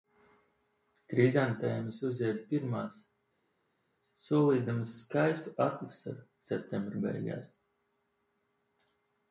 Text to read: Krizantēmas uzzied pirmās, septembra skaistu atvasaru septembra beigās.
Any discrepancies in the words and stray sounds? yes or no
yes